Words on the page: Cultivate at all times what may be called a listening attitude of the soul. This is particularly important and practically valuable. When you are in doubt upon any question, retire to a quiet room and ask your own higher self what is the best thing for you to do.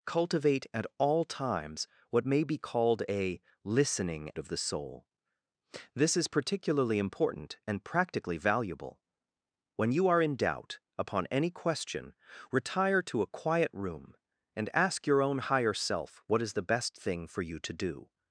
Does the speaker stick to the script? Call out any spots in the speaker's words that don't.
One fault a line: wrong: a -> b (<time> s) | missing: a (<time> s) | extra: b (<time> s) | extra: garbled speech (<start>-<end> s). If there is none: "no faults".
missing: attitude (4.3 s)